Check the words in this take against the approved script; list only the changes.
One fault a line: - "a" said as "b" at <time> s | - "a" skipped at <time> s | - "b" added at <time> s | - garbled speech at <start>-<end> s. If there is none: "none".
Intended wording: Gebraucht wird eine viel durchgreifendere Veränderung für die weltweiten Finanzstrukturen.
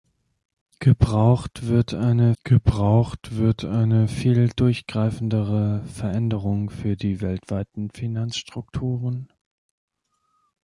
- "gebraucht wird eine" added at 2.4 s